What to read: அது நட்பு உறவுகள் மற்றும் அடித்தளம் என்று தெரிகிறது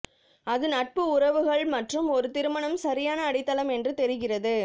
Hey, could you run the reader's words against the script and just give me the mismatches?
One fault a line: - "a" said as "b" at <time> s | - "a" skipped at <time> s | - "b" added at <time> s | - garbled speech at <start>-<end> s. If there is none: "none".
- "ஒரு திருமணம் சரியான" added at 2.1 s